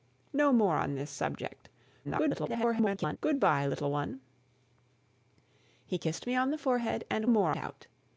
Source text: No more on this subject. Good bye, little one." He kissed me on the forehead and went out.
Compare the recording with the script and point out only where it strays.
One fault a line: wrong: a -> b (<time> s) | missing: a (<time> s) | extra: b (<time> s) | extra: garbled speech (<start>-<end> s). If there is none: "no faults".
extra: garbled speech (2.0-3.2 s)
wrong: went -> more (7.3 s)